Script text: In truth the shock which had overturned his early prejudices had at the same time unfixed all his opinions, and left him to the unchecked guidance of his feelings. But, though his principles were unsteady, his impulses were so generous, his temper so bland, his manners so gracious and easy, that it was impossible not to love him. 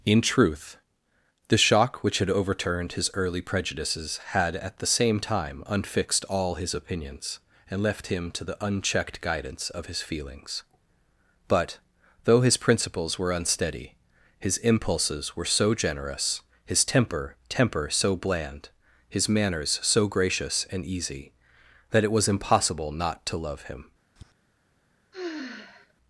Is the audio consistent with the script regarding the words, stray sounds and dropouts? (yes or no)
no